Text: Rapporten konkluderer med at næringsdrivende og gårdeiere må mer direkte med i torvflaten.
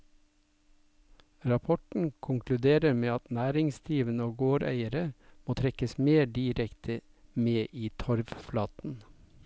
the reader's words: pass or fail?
fail